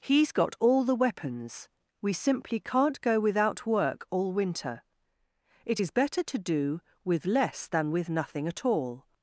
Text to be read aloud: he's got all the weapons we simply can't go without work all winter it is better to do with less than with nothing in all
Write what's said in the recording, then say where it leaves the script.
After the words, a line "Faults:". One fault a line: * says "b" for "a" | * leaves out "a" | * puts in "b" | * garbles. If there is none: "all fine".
he's got all the weapons we simply can't go without work all winter it is better to do with less than with nothing at all
Faults:
* says "at" for "in"